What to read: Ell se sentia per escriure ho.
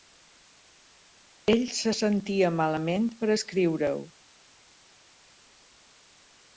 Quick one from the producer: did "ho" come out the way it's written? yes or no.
yes